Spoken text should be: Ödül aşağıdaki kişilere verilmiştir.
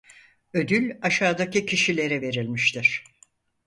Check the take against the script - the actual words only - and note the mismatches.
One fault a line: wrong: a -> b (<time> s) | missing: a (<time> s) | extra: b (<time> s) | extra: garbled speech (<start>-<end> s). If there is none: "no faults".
no faults